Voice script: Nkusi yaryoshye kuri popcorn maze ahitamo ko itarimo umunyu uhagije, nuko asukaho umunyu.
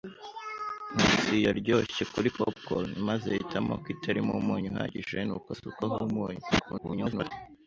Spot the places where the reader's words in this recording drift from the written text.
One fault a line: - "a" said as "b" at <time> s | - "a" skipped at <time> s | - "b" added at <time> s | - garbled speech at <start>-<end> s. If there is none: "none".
- garbled speech at 6.5-7.3 s